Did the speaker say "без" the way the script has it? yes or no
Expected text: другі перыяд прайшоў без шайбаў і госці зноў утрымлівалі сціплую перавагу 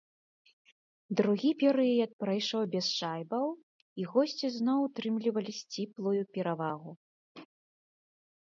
yes